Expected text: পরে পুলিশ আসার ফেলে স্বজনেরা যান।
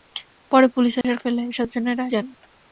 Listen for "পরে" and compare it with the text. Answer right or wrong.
right